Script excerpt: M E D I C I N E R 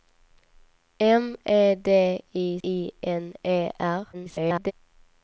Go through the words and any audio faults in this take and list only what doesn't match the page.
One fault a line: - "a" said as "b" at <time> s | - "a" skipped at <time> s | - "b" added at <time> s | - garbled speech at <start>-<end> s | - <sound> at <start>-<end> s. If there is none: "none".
- "C" skipped at 2.6 s
- garbled speech at 4.1-4.7 s